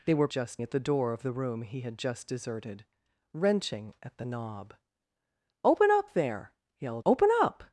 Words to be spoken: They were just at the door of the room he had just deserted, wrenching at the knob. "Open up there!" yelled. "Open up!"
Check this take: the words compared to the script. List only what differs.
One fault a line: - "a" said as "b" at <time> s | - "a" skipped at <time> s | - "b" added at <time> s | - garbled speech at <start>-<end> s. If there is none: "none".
none